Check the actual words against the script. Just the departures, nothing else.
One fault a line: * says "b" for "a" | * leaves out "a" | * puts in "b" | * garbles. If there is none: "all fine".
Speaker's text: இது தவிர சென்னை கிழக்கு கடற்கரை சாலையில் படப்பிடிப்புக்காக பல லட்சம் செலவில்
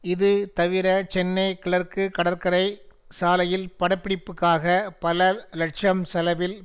all fine